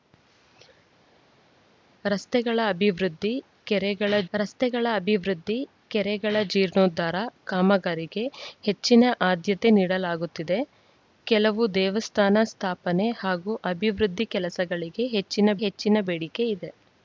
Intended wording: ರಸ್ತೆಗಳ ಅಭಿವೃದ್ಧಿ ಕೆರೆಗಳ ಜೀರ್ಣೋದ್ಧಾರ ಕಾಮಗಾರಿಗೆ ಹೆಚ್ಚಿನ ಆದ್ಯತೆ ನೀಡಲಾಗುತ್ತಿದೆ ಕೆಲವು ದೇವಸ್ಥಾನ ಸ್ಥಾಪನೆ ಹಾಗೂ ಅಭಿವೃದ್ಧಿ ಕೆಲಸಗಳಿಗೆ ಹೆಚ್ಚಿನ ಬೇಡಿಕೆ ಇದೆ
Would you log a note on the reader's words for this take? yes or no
yes